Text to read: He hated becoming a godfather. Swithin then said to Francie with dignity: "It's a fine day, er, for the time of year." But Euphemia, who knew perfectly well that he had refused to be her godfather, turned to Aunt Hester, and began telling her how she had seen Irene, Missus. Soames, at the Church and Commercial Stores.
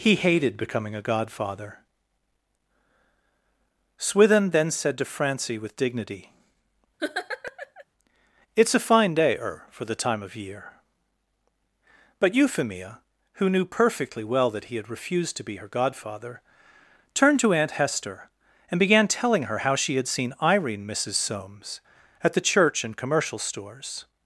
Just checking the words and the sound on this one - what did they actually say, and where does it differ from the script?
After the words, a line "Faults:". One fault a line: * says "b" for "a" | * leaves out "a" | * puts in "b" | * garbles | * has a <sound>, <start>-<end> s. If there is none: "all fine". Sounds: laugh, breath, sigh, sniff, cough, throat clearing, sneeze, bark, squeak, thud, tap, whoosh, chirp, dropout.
He hated becoming a godfather. Swithin then said to Francie with dignity: "It's a fine day, er, for the time of year." But Euphemia, who knew perfectly well that he had refused to be her godfather, turned to Aunt Hester, and began telling her how she had seen Irene, Missus. Soames, at the Church and Commercial Stores.
Faults:
* has a laugh, 7.0-7.8 s